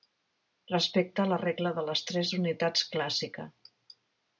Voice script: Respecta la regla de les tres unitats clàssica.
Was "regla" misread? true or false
false